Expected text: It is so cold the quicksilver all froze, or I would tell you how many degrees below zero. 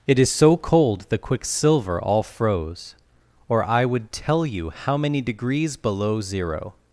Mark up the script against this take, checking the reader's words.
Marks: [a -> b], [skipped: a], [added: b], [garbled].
It is so cold the quicksilver all froze, or I would tell you how many degrees below zero.